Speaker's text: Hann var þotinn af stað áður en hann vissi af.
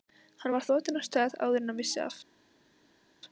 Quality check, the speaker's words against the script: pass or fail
pass